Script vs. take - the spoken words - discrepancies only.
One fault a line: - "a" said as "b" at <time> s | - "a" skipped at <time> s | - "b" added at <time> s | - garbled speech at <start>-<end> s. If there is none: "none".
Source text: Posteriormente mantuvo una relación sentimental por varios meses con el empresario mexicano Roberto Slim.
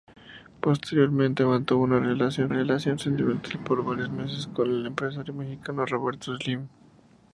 - "relación" added at 2.5 s